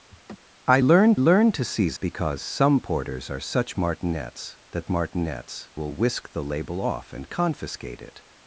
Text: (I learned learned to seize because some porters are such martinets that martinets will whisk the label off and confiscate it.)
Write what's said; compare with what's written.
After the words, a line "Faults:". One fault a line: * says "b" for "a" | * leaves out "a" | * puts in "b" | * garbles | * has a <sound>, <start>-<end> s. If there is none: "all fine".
(I learned learned to seize because some porters are such martinets that martinets will whisk the label off and confiscate it.)
Faults:
* has a laugh, 0.1-0.4 s